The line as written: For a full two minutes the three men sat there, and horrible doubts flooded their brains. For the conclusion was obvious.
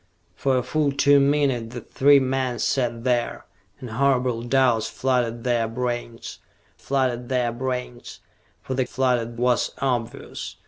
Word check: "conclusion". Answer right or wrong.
wrong